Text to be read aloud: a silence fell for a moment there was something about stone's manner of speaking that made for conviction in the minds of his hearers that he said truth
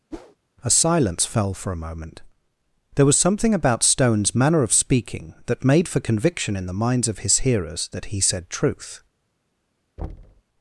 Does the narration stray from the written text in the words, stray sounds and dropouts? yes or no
yes